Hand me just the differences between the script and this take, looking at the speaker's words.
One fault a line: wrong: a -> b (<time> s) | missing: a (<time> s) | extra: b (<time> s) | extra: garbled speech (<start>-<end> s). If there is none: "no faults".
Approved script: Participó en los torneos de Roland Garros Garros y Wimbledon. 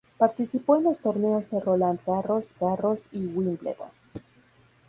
no faults